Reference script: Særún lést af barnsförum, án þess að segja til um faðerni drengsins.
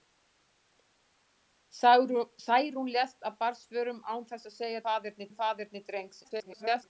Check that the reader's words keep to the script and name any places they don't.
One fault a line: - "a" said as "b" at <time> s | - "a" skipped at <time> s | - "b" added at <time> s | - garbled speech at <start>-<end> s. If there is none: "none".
- "til" said as "faðerni" at 4.9 s
- garbled speech at 6.2-6.9 s